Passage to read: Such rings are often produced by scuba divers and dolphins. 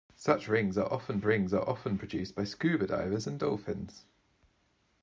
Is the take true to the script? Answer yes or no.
no